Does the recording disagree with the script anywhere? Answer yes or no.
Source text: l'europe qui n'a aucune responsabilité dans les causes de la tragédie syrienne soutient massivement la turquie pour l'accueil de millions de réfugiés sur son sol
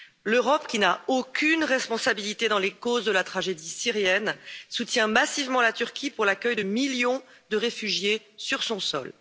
no